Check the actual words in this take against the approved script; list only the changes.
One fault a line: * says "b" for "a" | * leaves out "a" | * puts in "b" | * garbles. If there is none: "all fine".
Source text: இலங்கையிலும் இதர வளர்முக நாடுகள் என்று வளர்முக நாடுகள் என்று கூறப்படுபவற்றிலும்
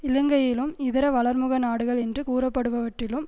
* leaves out "வளர்முக நாடுகள் என்று"